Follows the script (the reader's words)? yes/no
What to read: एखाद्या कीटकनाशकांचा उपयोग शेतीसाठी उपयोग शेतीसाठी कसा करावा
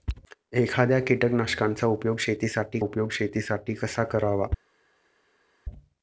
yes